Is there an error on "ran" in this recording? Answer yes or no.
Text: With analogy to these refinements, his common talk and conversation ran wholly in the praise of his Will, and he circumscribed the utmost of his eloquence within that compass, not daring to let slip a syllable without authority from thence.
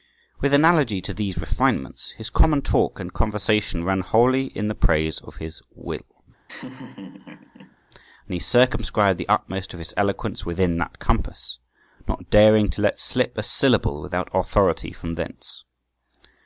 no